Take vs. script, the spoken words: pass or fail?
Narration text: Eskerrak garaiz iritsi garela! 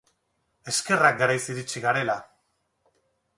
pass